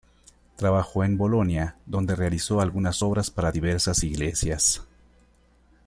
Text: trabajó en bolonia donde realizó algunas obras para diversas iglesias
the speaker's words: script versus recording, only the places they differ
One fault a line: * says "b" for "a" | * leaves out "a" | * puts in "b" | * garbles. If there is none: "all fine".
all fine